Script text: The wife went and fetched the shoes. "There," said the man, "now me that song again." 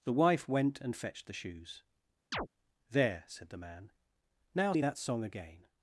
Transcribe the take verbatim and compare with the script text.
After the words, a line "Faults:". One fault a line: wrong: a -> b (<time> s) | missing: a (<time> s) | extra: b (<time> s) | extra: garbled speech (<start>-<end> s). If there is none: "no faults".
The wife went and fetched the shoes. "There," said the man, "now me that song again."
Faults:
no faults